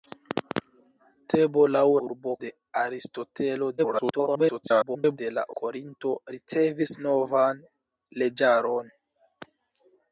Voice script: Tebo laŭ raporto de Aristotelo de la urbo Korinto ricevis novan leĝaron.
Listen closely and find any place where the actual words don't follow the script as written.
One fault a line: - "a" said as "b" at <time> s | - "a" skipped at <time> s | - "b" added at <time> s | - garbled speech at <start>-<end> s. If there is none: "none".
- "raporto" said as "urbo" at 2.1 s
- garbled speech at 3.8-5.2 s
- "urbo" skipped at 5.5 s